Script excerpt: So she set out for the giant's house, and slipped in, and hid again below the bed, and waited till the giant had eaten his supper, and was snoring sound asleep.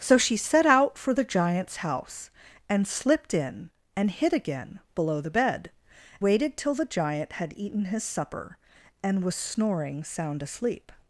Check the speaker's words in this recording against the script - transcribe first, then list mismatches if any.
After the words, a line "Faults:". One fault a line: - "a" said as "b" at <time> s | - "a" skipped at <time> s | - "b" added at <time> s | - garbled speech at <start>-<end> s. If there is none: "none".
So she set out for the giant's house, and slipped in, and hid again below the bed, waited till the giant had eaten his supper, and was snoring sound asleep.
Faults:
- "and" skipped at 5.7 s